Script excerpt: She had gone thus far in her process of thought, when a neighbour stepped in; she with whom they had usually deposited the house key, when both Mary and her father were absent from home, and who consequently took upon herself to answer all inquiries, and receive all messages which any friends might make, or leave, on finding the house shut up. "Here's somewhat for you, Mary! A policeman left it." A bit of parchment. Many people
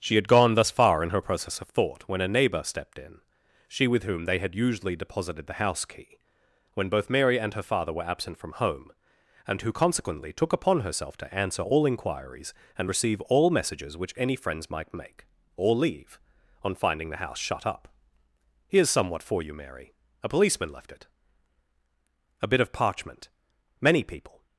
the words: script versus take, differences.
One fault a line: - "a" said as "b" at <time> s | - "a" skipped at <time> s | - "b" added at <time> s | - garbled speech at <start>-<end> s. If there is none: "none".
none